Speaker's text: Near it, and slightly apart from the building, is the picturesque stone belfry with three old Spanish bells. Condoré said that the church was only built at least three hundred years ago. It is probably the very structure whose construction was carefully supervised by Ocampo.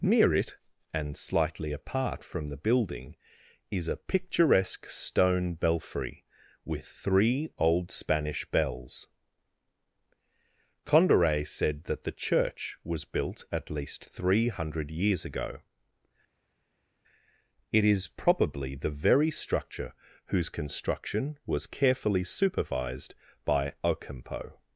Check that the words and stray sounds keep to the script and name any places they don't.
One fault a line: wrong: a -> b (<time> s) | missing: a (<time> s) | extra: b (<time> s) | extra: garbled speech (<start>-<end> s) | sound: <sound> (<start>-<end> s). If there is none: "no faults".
wrong: the -> a (3.9 s)
missing: only (13.1 s)